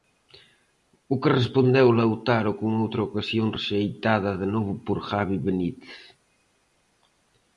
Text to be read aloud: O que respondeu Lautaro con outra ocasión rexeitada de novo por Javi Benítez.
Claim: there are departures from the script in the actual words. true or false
false